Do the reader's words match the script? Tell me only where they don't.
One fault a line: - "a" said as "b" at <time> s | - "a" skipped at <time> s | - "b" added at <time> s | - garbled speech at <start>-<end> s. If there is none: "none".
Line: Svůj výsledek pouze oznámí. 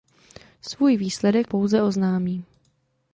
none